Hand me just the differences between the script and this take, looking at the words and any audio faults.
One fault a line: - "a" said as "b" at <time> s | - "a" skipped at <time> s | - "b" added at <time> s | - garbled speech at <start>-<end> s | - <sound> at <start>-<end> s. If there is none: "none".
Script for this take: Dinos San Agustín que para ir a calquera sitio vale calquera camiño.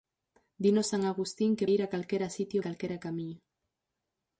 - "para" skipped at 1.7 s
- "vale" skipped at 2.6 s